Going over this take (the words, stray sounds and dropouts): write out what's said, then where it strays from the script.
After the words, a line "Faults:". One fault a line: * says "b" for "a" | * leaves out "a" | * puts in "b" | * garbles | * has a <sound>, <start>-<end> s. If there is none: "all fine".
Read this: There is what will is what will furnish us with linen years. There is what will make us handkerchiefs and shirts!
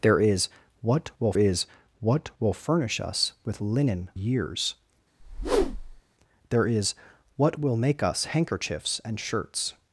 There is what will is what will furnish us with linen years. There is what will make us handkerchiefs and shirts!
Faults:
* has a whoosh, 5.2-6.0 s